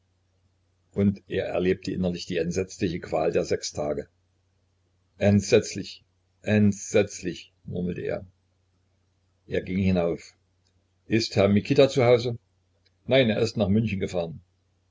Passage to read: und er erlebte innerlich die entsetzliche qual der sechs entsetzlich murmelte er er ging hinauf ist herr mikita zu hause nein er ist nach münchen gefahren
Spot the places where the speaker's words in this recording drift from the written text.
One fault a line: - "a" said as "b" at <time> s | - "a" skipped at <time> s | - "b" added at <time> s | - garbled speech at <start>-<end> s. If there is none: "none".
- "tage entsetzlich" added at 3.7 s